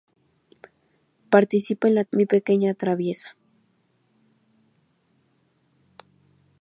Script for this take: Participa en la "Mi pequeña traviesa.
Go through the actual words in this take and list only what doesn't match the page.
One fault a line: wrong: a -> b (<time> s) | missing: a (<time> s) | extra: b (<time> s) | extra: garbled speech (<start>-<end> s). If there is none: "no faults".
no faults